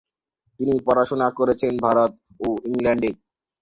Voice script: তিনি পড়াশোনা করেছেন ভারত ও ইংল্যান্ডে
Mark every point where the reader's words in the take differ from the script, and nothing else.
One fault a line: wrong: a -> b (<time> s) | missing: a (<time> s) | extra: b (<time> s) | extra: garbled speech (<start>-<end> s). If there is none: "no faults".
no faults